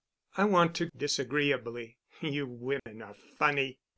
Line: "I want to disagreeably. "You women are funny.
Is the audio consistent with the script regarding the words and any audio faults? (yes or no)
no